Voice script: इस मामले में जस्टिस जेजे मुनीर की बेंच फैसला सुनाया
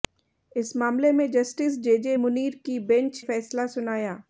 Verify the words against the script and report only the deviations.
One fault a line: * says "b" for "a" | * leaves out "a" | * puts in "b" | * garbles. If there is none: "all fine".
all fine